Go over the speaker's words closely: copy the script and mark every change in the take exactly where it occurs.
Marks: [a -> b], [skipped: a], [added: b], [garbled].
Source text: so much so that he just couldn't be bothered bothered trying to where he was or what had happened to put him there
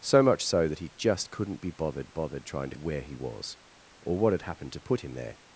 so much so that he just couldn't be bothered bothered trying to where he was or what had happened to put him there